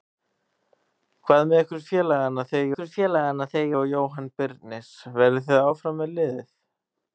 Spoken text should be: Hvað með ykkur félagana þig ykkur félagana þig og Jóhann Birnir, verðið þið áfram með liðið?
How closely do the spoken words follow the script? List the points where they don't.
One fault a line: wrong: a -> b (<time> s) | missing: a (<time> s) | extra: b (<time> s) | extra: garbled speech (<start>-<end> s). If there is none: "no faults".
no faults